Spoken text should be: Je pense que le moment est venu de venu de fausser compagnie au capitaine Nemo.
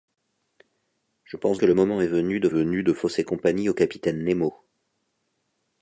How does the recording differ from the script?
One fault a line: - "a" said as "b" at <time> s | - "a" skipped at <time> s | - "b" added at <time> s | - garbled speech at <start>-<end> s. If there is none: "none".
none